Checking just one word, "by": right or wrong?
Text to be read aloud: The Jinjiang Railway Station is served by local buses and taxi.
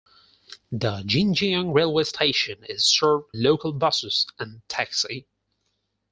wrong